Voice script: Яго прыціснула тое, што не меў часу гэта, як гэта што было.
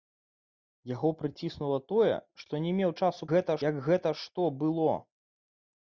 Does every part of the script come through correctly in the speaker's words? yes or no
yes